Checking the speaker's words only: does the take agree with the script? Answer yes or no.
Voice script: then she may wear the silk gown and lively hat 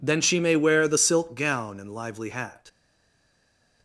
yes